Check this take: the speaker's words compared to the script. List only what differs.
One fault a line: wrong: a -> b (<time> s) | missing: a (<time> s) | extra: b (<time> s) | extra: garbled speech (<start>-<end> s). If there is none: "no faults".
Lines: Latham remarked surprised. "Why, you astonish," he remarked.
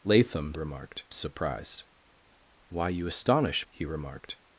no faults